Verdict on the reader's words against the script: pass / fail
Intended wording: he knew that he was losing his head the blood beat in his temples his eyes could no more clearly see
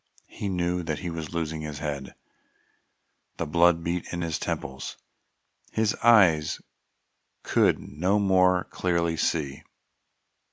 pass